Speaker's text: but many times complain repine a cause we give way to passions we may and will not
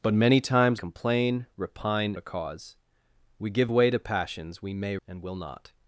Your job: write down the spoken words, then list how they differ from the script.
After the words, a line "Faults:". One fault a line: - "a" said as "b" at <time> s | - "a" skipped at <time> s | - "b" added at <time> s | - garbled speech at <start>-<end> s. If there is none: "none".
but many times complain repine a cause we give way to passions we may and will not
Faults:
none